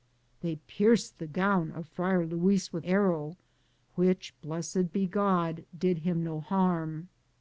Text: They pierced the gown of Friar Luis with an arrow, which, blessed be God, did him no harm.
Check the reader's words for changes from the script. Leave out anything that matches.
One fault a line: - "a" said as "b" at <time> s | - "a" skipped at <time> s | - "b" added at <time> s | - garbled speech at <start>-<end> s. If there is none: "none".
- "an" skipped at 2.9 s